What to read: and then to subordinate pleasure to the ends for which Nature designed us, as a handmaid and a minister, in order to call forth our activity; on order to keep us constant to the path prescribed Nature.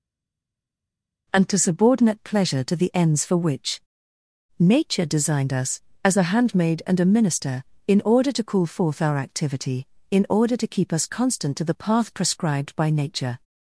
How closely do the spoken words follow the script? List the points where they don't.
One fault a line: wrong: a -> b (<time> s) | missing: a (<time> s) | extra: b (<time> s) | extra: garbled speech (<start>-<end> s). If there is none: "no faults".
missing: then (1.5 s)
wrong: on -> in (10.1 s)
extra: by (12.7 s)